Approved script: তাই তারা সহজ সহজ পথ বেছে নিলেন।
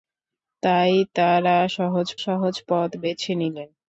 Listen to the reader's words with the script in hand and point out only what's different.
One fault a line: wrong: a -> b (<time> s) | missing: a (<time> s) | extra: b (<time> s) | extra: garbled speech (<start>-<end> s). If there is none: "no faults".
no faults